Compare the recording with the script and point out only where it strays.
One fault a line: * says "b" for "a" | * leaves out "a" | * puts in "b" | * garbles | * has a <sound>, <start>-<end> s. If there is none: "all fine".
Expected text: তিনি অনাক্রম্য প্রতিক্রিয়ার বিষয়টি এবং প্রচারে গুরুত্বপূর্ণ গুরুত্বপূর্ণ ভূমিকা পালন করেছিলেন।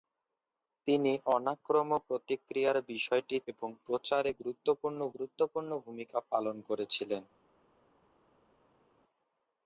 all fine